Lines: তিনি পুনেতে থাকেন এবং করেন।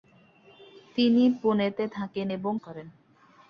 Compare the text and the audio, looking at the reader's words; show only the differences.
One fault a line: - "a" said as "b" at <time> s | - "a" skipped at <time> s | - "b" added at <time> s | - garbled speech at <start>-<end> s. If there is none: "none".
none